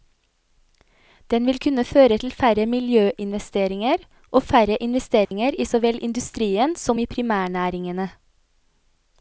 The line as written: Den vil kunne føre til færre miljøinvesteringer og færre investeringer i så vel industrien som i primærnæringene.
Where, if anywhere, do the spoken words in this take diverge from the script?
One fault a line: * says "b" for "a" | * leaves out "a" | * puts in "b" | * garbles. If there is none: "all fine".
all fine